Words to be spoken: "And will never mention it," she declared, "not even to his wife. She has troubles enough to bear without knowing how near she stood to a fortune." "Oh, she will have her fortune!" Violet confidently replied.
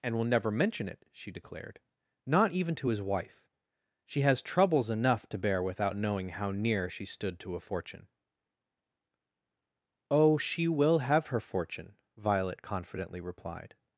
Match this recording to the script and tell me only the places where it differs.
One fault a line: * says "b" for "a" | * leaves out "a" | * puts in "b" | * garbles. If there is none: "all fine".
all fine